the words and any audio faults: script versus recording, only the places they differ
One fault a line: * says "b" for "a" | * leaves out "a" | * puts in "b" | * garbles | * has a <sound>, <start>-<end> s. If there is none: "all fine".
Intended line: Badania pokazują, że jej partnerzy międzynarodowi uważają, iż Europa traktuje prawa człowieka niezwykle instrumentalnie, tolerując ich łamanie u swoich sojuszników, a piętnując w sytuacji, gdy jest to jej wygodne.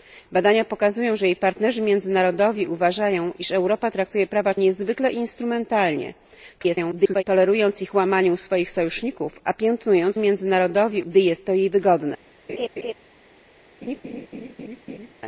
* leaves out "człowieka"
* garbles
* says "międzynarodowi" for "sytuacji"
* has a laugh, 12.5-12.9 s
* has a laugh, 13.8-15.1 s